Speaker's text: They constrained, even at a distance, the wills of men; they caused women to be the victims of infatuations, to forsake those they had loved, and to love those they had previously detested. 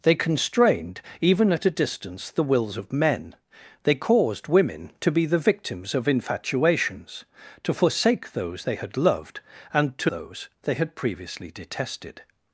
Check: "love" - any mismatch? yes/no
yes